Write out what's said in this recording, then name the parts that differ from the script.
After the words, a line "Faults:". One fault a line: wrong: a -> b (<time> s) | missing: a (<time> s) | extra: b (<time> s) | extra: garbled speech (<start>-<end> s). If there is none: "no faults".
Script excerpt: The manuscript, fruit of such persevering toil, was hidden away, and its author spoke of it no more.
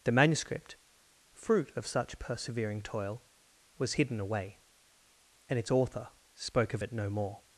The manuscript, fruit of such persevering toil, was hidden away, and its author spoke of it no more.
Faults:
no faults